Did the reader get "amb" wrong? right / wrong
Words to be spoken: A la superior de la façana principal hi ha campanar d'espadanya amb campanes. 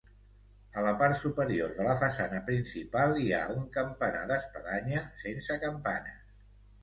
wrong